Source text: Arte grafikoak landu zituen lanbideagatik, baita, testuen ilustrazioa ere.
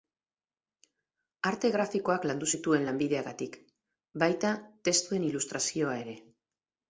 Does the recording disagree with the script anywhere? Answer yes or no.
no